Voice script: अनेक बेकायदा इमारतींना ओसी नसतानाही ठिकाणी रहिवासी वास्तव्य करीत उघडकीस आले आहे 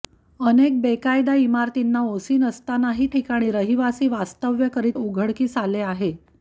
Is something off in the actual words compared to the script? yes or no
no